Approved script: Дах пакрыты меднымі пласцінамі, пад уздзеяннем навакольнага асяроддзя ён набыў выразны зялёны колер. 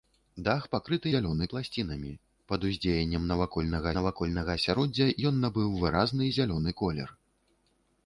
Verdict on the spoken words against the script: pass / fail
fail